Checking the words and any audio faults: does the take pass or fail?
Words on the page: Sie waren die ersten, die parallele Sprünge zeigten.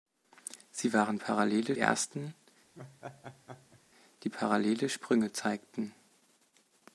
fail